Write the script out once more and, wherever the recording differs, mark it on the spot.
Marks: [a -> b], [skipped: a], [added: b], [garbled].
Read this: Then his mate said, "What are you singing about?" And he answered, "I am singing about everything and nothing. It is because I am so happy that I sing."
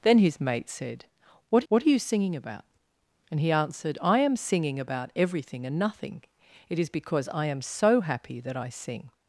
Then his mate said, "What [added: what] are you singing about?" And he answered, "I am singing about everything and nothing. It is because I am so happy that I sing."